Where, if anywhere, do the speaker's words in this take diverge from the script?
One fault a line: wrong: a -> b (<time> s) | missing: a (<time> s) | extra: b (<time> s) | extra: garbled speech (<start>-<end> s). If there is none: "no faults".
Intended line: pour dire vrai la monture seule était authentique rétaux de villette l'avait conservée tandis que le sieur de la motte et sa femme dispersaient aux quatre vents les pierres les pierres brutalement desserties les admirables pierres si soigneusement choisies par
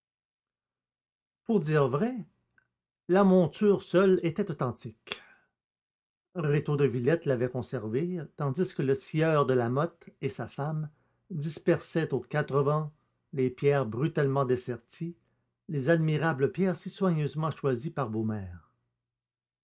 missing: les pierres (13.8 s)